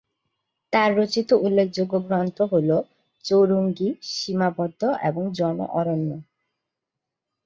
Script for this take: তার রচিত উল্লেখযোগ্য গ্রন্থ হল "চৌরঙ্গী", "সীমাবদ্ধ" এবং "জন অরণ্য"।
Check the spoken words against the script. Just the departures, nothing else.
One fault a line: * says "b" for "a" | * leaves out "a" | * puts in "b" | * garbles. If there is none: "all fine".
all fine